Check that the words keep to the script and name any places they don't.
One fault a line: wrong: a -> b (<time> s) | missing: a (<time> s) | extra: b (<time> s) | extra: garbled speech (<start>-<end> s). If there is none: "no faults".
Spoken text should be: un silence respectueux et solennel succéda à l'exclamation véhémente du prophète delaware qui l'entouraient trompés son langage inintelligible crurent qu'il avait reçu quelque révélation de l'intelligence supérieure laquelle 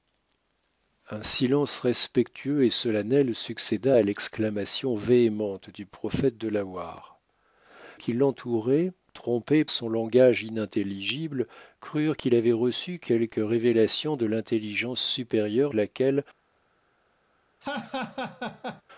no faults